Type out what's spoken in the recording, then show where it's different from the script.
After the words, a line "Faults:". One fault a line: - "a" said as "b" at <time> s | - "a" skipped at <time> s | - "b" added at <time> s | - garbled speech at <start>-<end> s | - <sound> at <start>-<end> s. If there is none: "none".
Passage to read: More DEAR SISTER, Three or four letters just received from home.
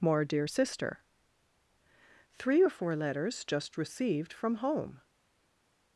More DEAR SISTER, Three or four letters just received from home.
Faults:
none